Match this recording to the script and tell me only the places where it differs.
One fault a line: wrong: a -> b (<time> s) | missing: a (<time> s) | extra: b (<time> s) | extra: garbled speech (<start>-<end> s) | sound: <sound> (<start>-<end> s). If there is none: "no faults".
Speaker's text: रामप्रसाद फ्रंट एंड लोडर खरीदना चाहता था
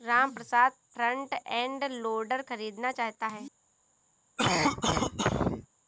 wrong: था -> है (3.3 s)
sound: cough (4.4-5.7 s)